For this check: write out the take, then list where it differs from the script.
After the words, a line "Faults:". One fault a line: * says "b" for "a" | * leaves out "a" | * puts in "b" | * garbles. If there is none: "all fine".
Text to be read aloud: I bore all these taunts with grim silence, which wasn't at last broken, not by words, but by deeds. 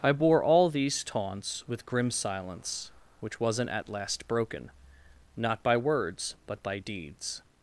I bore all these taunts with grim silence, which wasn't at last broken, not by words, but by deeds.
Faults:
all fine